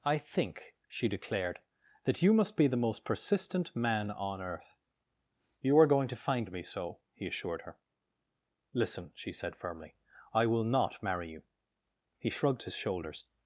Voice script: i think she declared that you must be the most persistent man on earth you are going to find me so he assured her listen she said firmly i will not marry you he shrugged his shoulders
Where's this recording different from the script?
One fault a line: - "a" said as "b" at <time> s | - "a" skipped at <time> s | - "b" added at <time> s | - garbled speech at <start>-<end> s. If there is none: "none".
none